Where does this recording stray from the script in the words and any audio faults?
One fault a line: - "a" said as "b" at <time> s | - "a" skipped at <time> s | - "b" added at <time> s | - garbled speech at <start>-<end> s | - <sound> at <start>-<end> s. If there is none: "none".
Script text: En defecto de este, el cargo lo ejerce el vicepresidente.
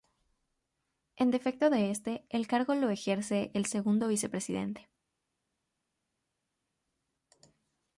- "segundo" added at 3.7 s